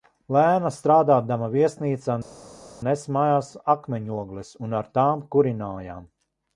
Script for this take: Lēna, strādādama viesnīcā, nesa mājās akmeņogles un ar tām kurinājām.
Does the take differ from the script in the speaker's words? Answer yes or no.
no